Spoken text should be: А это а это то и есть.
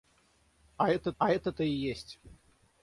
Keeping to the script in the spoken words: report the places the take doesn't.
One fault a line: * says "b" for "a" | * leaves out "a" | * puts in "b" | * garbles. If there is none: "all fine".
all fine